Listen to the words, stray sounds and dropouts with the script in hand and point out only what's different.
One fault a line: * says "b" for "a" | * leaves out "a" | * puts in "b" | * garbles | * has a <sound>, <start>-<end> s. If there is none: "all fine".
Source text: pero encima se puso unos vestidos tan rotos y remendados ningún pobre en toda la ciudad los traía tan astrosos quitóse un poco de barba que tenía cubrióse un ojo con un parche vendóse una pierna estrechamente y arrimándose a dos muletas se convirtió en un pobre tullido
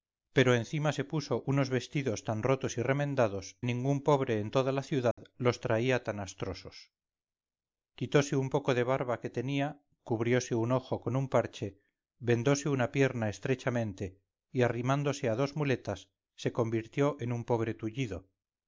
* has a dropout, 5.1-5.2 s